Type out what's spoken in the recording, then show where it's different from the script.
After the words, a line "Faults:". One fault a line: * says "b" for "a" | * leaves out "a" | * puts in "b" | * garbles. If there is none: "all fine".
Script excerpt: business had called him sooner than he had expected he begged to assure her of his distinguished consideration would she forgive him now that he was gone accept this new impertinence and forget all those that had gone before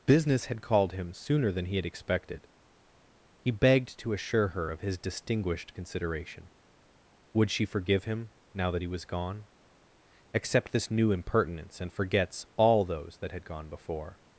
business had called him sooner than he had expected he begged to assure her of his distinguished consideration would she forgive him now that he was gone accept this new impertinence and forgets all those that had gone before
Faults:
* says "forgets" for "forget"